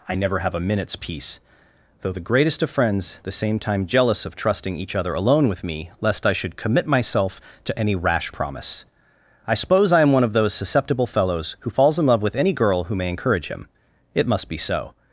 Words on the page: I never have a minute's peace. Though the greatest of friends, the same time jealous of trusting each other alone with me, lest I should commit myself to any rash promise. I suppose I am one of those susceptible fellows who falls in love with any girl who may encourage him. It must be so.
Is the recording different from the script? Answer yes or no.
no